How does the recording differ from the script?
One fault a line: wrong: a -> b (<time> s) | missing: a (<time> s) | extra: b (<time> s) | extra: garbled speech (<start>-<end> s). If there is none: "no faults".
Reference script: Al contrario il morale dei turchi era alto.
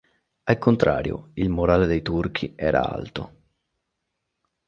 no faults